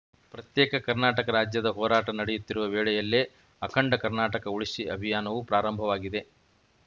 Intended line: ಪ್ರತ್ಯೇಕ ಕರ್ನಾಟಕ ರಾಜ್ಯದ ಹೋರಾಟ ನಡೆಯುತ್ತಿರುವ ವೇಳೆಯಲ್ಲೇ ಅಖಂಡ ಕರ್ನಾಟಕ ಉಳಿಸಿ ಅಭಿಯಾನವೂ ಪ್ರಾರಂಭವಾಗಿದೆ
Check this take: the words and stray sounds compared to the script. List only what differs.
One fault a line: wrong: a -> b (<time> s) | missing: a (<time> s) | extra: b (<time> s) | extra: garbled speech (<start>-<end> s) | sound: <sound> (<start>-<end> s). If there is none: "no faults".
no faults